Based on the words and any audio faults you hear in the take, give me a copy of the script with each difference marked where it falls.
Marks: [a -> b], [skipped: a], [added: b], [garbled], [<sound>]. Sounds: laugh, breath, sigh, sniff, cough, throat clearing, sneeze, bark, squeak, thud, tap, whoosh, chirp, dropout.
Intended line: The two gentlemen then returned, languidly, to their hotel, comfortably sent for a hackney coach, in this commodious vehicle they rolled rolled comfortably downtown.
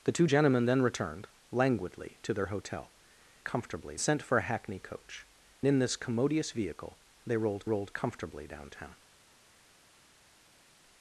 The two gentlemen then returned, languidly, to their hotel, comfortably sent for a hackney coach, in this commodious vehicle they rolled rolled comfortably downtown.